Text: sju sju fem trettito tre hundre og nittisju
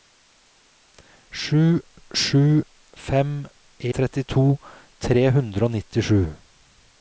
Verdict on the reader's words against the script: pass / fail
pass